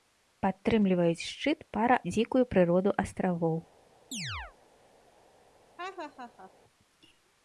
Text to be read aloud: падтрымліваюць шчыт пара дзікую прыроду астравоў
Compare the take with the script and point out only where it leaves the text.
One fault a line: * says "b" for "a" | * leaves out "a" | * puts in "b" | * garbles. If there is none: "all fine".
all fine